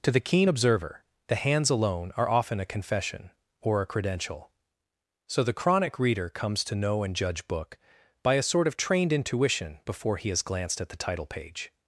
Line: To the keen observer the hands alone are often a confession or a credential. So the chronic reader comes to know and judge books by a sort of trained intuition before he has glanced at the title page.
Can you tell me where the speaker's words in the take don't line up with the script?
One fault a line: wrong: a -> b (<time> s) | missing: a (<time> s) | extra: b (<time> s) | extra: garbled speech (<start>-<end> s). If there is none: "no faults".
wrong: books -> book (7.5 s)